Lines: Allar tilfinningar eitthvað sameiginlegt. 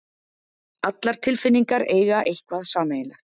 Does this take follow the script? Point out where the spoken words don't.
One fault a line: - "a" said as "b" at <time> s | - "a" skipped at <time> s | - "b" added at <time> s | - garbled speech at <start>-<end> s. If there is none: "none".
- "eiga" added at 2.0 s